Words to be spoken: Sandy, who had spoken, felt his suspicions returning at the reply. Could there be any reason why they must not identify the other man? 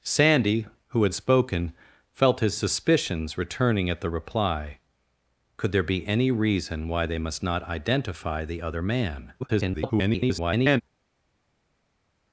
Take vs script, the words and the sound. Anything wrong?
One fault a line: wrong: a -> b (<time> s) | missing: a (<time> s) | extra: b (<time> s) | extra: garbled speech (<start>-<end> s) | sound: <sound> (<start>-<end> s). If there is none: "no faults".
extra: garbled speech (9.4-10.8 s)